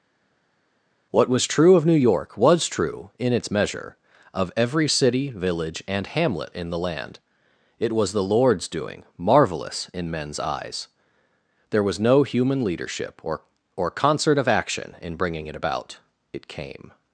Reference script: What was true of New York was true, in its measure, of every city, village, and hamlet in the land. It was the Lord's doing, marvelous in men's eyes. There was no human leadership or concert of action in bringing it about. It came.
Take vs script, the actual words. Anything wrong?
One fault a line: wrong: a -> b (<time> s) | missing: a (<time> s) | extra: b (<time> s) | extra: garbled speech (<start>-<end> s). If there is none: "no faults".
extra: or (13.8 s)